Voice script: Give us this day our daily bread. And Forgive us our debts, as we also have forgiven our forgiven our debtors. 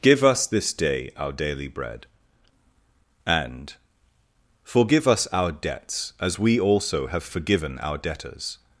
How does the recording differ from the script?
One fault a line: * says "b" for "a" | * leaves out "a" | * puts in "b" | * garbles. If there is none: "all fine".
* leaves out "forgiven our"